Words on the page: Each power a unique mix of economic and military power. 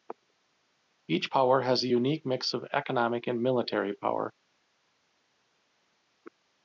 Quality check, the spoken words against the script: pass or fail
fail